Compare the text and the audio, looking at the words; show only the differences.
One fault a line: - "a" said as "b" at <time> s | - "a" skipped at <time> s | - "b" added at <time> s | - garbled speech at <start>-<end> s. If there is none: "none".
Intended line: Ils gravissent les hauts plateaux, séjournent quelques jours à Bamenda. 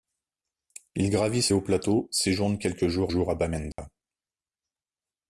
- "les" skipped at 1.5 s
- "jours" added at 3.1 s